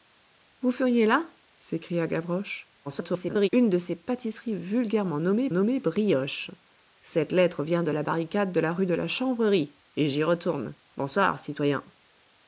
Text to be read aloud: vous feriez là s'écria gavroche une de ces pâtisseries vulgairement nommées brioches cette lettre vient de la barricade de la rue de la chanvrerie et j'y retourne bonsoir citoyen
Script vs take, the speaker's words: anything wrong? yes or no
yes